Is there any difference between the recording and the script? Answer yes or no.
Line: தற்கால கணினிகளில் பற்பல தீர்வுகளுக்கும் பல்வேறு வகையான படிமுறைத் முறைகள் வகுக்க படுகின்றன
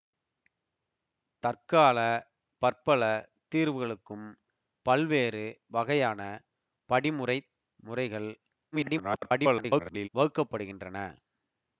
yes